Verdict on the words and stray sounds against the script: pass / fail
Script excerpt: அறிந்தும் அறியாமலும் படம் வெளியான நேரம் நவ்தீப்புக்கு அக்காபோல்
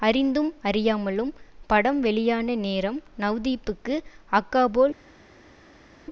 pass